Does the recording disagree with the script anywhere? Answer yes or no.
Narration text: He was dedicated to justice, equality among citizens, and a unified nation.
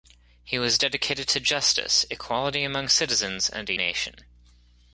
yes